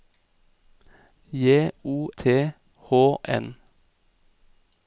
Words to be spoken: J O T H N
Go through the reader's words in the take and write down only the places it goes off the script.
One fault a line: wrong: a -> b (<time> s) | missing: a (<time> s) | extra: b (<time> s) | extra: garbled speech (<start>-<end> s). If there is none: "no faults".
no faults